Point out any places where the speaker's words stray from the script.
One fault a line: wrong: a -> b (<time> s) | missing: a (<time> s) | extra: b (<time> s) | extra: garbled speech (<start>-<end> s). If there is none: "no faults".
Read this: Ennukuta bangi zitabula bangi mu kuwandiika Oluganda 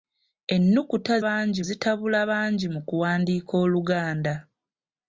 no faults